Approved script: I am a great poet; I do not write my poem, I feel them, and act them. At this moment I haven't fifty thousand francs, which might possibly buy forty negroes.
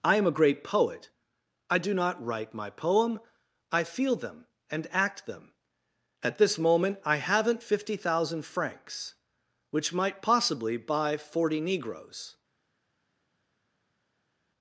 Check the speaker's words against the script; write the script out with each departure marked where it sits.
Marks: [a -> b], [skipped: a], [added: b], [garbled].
I am a great poet; I do not write my poem, I feel them, and act them. At this moment I haven't fifty thousand francs, which might possibly buy forty negroes.